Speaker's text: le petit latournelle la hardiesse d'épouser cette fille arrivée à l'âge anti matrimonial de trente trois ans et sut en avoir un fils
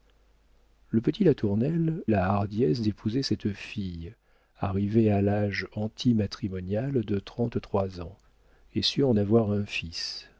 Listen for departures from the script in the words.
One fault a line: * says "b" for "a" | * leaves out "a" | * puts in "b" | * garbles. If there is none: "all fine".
all fine